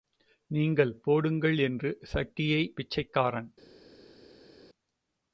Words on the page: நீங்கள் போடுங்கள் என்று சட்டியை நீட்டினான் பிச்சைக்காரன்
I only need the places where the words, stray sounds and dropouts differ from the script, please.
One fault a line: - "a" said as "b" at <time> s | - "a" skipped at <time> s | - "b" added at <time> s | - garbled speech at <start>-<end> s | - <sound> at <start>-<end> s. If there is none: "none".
- "நீட்டினான்" skipped at 2.7 s